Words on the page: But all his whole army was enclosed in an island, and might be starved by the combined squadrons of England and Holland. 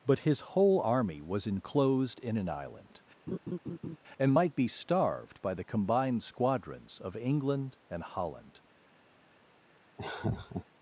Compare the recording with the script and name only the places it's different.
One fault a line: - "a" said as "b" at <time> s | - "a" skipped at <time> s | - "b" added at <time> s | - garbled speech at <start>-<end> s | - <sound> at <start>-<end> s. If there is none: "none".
- "all" skipped at 0.2 s
- laugh at 3.3-4.0 s
- laugh at 10.0-10.7 s